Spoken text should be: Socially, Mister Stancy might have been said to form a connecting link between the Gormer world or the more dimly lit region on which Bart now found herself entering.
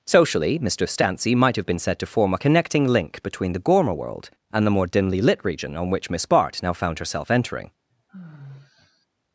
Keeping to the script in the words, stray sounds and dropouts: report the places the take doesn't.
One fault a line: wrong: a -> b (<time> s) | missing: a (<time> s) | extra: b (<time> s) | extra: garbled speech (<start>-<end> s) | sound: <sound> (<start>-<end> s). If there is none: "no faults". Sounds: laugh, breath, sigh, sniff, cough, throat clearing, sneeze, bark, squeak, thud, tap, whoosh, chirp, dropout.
wrong: or -> and (4.5 s)
extra: Miss (6.1 s)
sound: sigh (7.9-9.1 s)